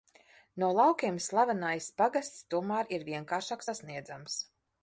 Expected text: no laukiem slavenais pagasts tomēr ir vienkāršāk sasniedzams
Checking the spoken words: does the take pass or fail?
pass